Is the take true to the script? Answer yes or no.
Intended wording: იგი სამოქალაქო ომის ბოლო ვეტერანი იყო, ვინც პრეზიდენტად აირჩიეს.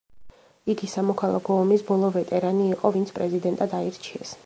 yes